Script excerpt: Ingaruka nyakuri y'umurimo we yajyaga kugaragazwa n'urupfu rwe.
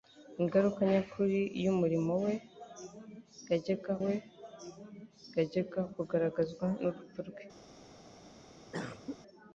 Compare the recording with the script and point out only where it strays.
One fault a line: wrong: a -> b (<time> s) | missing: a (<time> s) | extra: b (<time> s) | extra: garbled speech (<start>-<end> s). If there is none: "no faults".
extra: we yajyaga (4.0 s)